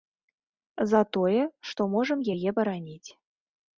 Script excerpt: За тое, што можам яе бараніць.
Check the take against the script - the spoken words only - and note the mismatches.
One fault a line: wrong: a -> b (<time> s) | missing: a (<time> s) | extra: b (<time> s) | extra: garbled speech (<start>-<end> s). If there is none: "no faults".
no faults